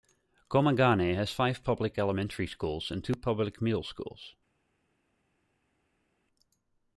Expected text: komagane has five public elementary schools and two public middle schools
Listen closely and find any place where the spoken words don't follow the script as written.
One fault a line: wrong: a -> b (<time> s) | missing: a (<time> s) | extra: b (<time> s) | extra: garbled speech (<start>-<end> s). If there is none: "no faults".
no faults